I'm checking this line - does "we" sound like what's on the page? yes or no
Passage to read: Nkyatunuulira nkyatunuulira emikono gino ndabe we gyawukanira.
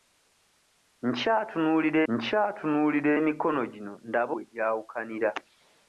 yes